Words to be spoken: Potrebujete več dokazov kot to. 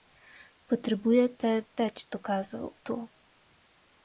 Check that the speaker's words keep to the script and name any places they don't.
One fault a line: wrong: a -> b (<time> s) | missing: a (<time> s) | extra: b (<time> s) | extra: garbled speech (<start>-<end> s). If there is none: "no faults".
missing: kot (2.7 s)